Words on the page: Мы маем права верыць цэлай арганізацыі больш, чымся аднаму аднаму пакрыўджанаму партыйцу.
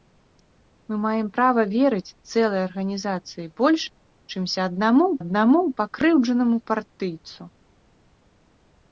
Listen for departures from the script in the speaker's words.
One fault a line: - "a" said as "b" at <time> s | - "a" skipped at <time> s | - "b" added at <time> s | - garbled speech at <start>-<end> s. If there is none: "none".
none